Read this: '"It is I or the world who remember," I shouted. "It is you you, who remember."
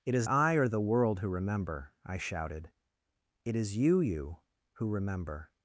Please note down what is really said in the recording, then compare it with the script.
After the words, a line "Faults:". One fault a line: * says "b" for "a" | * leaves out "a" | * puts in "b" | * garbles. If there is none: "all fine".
'"It is I or the world who remember," I shouted. "It is you you, who remember."
Faults:
all fine